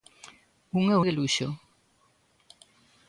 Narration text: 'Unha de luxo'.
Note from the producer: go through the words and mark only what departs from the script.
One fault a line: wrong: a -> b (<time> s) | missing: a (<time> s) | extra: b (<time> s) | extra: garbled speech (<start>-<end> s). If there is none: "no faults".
no faults